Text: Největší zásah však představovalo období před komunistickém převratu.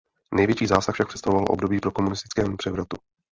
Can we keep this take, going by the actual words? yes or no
no